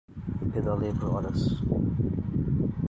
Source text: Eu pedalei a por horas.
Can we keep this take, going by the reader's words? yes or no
yes